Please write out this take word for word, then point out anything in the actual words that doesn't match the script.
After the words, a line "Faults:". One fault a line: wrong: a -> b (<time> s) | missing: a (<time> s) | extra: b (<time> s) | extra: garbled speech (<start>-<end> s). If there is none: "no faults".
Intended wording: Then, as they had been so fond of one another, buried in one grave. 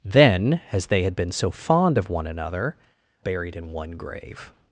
Then, as they had been so fond of one another, buried in one grave.
Faults:
no faults